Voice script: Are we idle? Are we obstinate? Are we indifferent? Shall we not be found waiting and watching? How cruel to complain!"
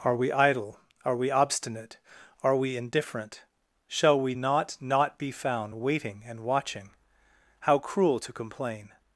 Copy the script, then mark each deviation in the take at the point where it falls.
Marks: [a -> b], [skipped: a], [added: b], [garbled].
Are we idle? Are we obstinate? Are we indifferent? Shall we not [added: not] be found waiting and watching? How cruel to complain!"